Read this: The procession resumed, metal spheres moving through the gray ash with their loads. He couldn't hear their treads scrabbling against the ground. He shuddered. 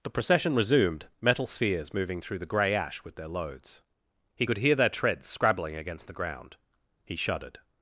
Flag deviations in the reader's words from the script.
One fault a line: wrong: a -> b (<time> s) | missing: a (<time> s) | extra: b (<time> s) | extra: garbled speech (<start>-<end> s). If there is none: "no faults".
wrong: couldn't -> could (4.4 s)